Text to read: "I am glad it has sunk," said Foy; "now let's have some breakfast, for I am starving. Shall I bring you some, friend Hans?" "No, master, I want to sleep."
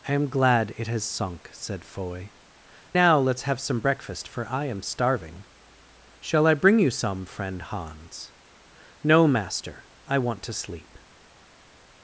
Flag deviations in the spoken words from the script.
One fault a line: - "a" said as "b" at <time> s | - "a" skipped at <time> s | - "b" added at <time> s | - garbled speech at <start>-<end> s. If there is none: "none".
none